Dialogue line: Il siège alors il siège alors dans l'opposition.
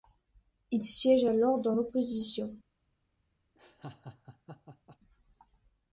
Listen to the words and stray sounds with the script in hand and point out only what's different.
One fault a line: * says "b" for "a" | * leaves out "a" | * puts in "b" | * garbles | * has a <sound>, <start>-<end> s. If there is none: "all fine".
* leaves out "il siège alors"
* has a laugh, 3.6-5.0 s